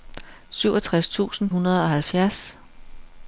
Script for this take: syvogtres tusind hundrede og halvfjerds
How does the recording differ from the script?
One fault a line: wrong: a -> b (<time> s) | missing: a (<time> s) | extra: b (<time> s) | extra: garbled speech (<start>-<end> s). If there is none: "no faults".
no faults